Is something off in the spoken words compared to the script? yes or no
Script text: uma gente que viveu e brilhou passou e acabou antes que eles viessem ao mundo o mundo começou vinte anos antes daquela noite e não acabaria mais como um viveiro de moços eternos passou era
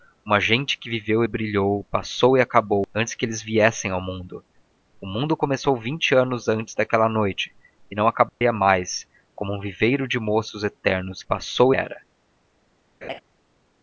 no